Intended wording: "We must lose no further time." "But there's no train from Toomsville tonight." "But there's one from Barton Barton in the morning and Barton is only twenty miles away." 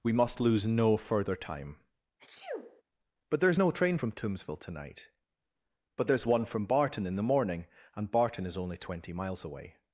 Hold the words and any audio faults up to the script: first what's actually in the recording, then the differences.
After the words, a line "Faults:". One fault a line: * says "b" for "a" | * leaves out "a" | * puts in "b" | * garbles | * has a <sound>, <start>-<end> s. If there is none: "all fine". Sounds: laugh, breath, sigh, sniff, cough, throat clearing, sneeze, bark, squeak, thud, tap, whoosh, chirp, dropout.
"We must lose no further time." "But there's no train from Toomsville tonight." "But there's one from Barton in the morning and Barton is only twenty miles away."
Faults:
* has a sneeze, 2.2-2.8 s
* leaves out "Barton"